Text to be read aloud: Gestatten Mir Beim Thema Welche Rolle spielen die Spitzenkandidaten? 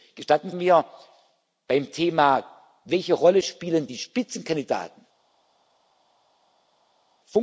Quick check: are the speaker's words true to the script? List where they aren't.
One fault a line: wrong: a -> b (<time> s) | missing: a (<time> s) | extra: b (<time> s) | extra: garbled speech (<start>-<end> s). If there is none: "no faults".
no faults